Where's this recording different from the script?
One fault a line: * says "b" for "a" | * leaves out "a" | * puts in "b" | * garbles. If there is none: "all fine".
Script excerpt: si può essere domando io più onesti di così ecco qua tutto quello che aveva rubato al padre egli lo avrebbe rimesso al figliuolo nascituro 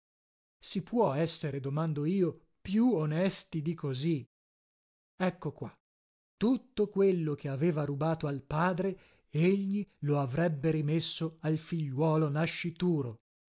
all fine